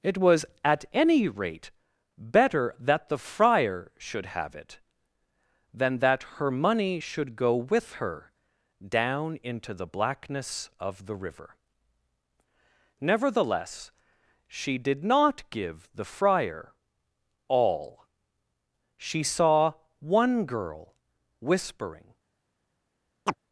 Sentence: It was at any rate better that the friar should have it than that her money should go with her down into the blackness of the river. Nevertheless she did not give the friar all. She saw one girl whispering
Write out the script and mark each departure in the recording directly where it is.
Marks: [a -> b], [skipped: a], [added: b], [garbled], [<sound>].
It was at any rate better that the friar should have it than that her money should go with her down into the blackness of the river. Nevertheless she did not give the friar all. She saw one girl whispering [chirp]